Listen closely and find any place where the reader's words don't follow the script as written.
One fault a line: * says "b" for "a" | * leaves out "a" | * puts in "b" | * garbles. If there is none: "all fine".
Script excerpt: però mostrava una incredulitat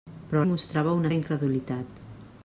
all fine